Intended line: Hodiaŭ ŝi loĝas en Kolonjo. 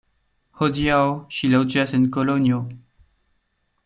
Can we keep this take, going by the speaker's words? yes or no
yes